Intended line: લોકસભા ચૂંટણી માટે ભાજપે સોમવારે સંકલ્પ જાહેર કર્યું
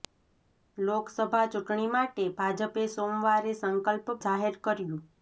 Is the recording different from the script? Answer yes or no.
no